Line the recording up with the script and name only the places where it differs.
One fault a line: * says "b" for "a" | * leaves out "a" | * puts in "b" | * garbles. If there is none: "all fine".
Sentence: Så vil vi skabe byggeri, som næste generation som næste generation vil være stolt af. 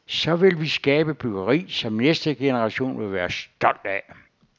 * leaves out "som næste generation"